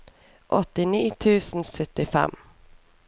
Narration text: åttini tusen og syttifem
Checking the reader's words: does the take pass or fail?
pass